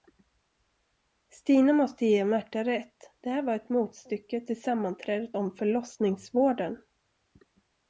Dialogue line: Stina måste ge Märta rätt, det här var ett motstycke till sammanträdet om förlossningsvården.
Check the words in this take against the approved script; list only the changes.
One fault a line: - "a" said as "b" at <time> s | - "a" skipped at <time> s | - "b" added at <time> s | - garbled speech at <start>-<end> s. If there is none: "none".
none